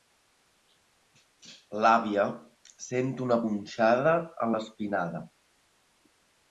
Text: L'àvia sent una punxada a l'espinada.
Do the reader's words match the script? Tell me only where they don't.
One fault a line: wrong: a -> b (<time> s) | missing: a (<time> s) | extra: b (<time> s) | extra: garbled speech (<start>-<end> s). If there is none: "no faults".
no faults